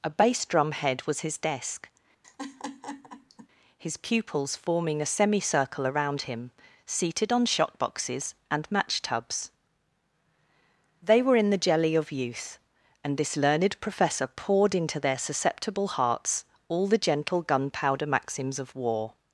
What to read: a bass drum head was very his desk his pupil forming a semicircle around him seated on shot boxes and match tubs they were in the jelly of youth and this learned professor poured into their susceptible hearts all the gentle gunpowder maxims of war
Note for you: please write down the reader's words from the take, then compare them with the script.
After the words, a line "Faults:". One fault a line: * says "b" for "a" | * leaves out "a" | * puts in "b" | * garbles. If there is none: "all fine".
a bass drum head was his desk his pupils forming a semicircle around him seated on shot boxes and match tubs they were in the jelly of youth and this learned professor poured into their susceptible hearts all the gentle gunpowder maxims of war
Faults:
* leaves out "very"
* says "pupils" for "pupil"